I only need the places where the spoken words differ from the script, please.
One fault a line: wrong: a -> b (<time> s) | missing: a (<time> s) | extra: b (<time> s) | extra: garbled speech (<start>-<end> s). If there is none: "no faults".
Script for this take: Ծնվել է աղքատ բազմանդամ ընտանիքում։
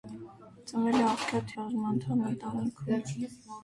no faults